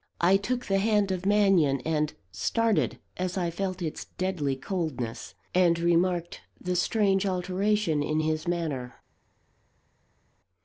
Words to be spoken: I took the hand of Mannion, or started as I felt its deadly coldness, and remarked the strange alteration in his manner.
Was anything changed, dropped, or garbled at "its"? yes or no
no